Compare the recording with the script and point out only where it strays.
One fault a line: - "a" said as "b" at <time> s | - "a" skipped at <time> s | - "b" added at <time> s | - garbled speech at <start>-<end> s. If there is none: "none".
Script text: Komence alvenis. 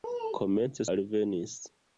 none